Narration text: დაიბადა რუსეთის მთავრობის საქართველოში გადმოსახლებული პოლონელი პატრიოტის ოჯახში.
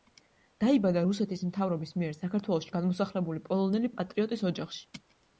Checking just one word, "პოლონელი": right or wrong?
right